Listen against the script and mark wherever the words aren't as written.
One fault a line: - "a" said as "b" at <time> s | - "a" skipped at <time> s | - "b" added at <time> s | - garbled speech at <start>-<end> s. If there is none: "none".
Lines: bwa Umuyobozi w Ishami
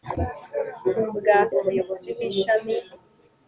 none